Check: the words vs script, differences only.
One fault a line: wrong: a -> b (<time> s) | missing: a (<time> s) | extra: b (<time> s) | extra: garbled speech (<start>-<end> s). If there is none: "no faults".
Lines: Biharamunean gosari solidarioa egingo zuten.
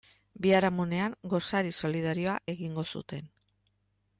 no faults